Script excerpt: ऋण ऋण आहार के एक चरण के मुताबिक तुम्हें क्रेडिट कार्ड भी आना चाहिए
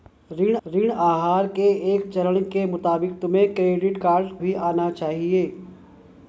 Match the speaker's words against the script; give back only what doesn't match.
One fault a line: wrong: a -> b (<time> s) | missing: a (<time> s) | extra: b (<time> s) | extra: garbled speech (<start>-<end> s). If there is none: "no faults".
no faults